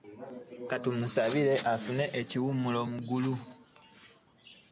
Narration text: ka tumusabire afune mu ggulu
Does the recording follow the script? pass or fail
fail